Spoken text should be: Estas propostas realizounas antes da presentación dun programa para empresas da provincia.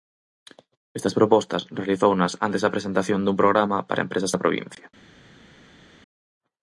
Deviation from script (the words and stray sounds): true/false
false